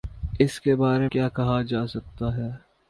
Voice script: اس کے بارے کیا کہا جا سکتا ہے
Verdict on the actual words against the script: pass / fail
pass